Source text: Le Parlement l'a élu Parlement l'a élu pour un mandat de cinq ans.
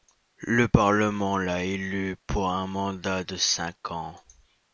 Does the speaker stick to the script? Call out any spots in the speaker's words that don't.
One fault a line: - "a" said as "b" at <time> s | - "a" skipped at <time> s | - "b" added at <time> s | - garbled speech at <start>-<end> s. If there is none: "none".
- "Parlement l'a élu" skipped at 2.1 s